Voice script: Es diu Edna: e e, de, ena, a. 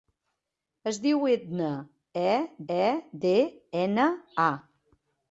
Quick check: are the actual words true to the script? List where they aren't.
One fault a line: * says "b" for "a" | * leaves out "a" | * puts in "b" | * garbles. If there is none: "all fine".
all fine